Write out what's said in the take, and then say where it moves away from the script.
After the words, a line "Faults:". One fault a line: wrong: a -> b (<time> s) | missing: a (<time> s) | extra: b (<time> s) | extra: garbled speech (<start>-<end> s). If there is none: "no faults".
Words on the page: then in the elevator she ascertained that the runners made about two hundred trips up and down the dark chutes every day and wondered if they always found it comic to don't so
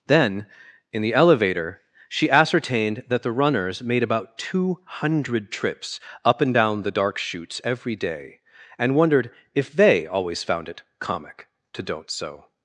then in the elevator she ascertained that the runners made about two hundred trips up and down the dark chutes every day and wondered if they always found it comic to don't so
Faults:
no faults